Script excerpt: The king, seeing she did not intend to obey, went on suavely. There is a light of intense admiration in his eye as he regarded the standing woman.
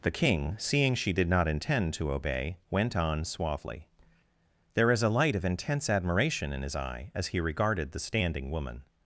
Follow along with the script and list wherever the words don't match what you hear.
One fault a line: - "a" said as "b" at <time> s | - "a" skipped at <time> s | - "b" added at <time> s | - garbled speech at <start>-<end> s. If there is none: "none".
none